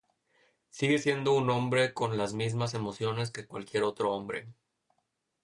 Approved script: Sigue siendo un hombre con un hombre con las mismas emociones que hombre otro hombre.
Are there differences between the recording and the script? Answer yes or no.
yes